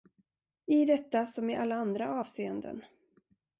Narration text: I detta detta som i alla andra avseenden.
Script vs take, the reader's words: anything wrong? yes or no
yes